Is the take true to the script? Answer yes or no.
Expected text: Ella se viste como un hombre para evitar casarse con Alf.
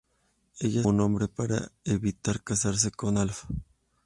no